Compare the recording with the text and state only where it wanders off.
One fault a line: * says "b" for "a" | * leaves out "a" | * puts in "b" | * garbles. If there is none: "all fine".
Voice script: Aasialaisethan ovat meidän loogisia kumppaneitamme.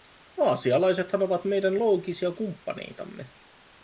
all fine